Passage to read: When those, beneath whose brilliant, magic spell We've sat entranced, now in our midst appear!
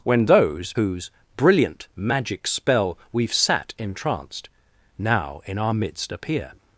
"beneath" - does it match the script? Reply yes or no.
no